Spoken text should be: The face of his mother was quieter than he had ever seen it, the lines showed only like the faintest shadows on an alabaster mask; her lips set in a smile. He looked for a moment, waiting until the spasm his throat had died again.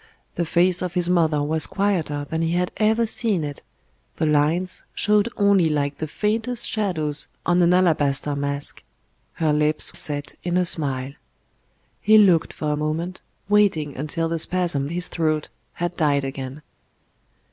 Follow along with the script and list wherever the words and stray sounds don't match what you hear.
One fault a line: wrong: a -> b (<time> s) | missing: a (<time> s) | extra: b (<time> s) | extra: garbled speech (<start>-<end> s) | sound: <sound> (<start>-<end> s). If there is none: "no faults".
no faults